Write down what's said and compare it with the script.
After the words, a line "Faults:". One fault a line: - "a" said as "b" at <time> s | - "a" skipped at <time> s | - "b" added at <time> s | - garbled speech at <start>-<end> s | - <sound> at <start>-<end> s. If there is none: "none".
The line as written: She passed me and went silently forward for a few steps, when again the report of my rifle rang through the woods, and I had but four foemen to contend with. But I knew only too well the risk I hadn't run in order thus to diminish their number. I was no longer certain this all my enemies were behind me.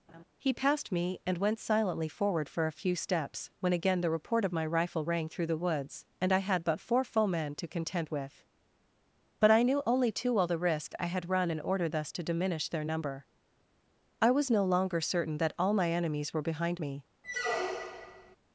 He passed me and went silently forward for a few steps, when again the report of my rifle rang through the woods, and I had but four foemen to contend with. But I knew only too well the risk I had run in order thus to diminish their number. I was no longer certain that all my enemies were behind me.
Faults:
- laugh at 0.1-0.2 s
- "She" said as "He" at 0.4 s
- "hadn't" said as "had" at 11.1 s
- "this" said as "that" at 15.4 s
- squeak at 17.2-18.4 s